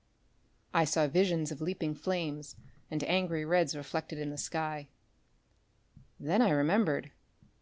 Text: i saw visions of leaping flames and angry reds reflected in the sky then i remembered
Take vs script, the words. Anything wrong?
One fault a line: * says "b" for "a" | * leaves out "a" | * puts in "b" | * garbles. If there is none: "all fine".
all fine